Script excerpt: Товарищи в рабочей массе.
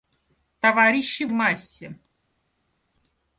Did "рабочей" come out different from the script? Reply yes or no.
yes